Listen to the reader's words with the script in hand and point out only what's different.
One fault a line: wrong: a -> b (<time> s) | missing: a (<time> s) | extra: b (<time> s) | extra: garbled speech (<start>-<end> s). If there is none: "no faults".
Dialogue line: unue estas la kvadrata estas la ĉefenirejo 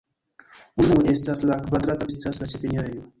no faults